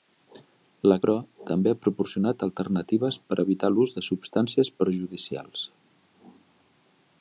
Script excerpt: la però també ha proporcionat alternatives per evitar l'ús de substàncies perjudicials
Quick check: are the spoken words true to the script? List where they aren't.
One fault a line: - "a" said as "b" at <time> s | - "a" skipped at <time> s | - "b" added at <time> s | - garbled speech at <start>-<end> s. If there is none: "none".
none